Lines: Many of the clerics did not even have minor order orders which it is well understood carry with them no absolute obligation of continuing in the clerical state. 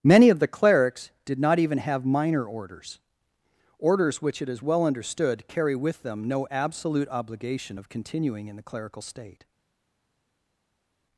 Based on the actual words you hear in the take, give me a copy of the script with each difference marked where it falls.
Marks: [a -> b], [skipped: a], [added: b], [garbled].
Many of the clerics did not even have minor [order -> orders] orders which it is well understood carry with them no absolute obligation of continuing in the clerical state.